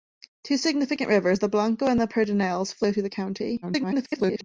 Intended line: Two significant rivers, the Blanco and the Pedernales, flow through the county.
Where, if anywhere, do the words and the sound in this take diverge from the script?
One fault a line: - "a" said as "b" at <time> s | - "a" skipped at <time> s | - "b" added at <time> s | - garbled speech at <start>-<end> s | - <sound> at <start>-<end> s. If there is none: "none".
- garbled speech at 3.6-4.4 s